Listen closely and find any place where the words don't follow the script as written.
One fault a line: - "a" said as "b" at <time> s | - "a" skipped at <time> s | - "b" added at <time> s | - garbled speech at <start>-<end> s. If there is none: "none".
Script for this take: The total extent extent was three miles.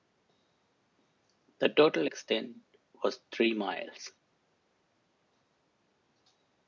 - "extent" skipped at 2.6 s